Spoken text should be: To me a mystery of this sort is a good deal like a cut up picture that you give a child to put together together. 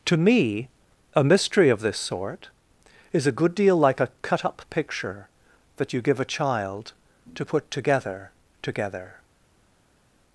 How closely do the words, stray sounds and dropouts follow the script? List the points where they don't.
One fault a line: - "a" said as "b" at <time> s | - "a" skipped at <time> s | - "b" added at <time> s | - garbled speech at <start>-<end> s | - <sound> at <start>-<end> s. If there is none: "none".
none